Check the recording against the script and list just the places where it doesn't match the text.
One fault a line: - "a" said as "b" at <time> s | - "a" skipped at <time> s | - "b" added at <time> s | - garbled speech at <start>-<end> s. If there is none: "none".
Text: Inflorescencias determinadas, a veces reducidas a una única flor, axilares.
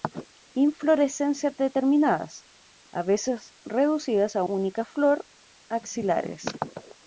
- "una" skipped at 4.4 s